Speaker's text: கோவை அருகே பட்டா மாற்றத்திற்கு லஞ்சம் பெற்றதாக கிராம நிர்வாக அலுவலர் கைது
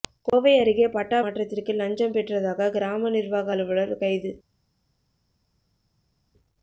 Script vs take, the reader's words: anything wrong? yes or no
no